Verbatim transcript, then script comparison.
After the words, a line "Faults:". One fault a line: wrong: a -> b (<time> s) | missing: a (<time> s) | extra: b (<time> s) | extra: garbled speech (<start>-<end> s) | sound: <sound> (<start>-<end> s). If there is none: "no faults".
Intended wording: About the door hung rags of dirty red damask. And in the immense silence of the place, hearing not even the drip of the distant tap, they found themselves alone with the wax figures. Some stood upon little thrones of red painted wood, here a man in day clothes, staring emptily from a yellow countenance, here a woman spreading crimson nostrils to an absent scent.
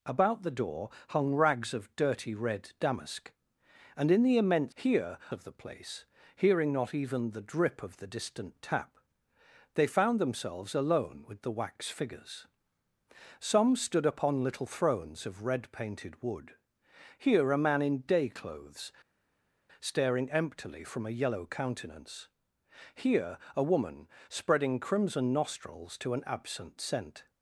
About the door hung rags of dirty red damask. And in the immense here of the place, hearing not even the drip of the distant tap, they found themselves alone with the wax figures. Some stood upon little thrones of red painted wood, here a man in day clothes, staring emptily from a yellow countenance, here a woman spreading crimson nostrils to an absent scent.
Faults:
wrong: silence -> here (4.7 s)